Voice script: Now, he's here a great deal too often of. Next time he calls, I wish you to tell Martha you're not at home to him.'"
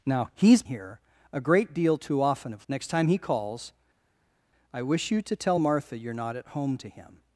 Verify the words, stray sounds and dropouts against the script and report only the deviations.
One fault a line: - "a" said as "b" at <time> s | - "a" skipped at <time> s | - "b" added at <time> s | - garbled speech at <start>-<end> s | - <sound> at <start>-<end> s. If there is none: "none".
none